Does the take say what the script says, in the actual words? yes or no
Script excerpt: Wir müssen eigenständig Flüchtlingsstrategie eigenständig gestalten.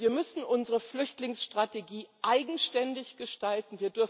no